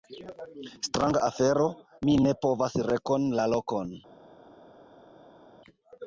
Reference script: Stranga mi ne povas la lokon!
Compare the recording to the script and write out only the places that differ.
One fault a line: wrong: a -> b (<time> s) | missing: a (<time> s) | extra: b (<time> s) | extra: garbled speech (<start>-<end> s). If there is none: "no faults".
extra: afero (1.3 s)
extra: rekoni (2.9 s)